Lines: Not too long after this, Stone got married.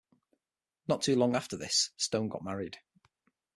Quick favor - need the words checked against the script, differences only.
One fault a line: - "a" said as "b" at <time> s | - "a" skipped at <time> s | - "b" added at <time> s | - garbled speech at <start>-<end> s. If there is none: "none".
none